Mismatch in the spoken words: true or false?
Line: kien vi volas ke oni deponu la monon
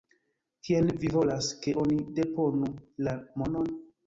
false